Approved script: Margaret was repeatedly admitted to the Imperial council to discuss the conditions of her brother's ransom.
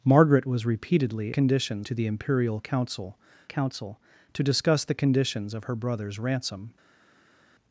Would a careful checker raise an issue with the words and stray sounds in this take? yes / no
yes